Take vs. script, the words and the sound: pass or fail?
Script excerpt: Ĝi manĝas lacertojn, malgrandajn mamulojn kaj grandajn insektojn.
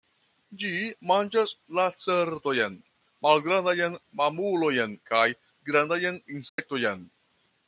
fail